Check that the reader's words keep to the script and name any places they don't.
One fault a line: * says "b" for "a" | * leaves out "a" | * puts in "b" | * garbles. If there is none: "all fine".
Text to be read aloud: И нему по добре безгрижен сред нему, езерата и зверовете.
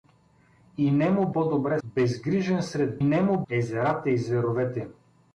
all fine